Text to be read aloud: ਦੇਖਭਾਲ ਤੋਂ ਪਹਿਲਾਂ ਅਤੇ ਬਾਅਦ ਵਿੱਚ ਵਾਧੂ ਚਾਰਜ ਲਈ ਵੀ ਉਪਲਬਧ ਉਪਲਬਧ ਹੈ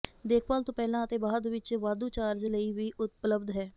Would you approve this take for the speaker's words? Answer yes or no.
no